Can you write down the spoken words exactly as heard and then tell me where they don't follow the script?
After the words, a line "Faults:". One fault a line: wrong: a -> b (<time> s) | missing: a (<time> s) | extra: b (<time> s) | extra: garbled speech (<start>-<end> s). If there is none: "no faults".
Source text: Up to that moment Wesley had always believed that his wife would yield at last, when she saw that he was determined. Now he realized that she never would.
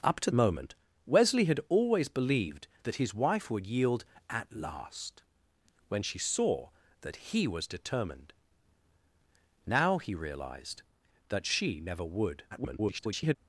Up to moment Wesley had always believed that his wife would yield at last, when she saw that he was determined. Now he realized that she never would. [garbled]
Faults:
missing: that (0.3 s)
extra: garbled speech (12.5-13.4 s)